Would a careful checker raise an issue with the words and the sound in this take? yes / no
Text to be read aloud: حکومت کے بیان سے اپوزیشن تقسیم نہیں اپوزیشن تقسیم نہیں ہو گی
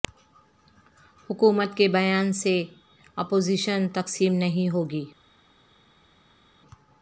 yes